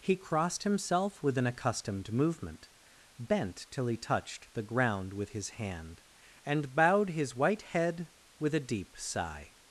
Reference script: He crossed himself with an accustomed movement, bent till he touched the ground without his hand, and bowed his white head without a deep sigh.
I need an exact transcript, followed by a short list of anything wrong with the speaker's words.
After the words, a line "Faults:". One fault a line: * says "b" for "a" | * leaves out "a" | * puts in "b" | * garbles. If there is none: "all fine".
He crossed himself with an accustomed movement, bent till he touched the ground with his hand, and bowed his white head with a deep sigh.
Faults:
* says "with" for "without"
* says "with" for "without"